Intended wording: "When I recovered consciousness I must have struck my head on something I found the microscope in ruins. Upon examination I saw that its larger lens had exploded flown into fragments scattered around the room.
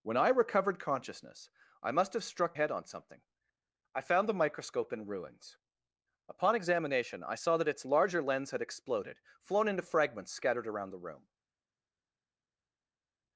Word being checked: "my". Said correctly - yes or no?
no